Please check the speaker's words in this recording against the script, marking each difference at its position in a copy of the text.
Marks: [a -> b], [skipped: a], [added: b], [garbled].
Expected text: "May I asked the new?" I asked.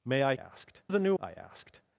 "May I asked the new?" I asked.